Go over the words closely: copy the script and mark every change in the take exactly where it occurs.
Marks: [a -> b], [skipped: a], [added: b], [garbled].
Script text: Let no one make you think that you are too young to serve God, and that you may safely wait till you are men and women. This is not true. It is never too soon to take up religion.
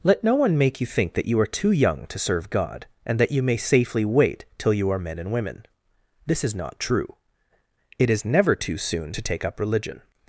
Let no one make you think that you are too young to serve God, and that you may safely wait till you are men and women. This is not true. It is never too soon to take up religion.